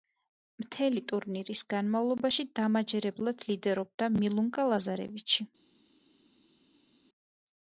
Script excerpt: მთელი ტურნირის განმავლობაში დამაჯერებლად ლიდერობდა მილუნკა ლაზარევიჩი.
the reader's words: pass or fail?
pass